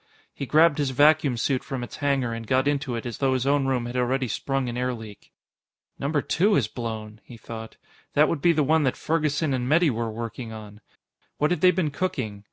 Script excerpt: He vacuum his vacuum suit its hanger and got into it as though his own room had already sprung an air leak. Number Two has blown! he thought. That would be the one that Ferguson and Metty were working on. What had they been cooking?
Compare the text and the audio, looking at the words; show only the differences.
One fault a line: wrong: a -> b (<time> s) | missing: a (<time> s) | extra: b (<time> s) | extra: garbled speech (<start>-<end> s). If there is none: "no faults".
wrong: vacuum -> grabbed (0.5 s)
extra: from (1.6 s)